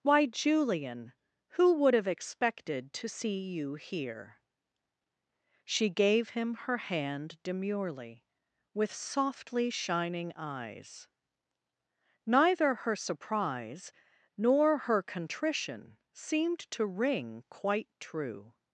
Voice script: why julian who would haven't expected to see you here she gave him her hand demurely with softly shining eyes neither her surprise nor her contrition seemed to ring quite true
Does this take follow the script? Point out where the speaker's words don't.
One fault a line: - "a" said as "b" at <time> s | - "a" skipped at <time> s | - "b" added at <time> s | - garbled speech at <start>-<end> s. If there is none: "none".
- "haven't" said as "have" at 1.9 s